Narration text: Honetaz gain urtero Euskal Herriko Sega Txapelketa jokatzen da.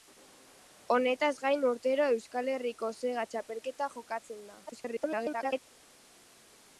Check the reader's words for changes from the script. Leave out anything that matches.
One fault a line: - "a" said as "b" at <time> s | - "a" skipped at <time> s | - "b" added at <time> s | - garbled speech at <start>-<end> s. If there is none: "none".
- garbled speech at 4.7-5.6 s